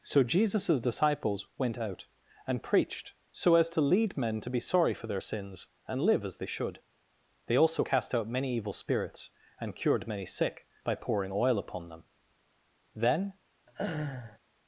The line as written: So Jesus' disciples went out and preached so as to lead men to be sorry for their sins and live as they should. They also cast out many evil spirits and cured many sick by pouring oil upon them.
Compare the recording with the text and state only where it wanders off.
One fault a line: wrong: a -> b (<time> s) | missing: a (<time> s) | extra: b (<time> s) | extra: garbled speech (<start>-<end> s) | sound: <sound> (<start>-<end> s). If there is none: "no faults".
extra: Then (12.9 s)
sound: laugh (13.7-14.4 s)